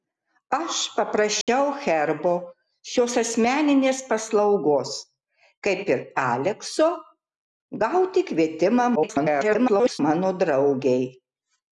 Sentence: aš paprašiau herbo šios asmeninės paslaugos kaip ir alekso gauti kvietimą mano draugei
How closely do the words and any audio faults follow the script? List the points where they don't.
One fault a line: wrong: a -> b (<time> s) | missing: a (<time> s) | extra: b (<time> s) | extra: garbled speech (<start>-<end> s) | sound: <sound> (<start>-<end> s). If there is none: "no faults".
sound: dropout (1.4-1.5 s)
extra: garbled speech (9.0-10.0 s)